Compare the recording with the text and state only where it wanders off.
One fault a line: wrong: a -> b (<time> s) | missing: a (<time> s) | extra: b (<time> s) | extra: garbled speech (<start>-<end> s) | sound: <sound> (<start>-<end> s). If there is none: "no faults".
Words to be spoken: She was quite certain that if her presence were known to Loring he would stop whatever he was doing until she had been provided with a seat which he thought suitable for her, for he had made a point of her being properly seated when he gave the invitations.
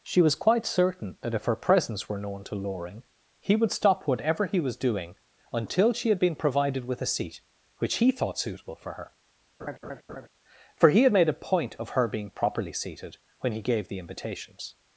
sound: laugh (9.6-10.3 s)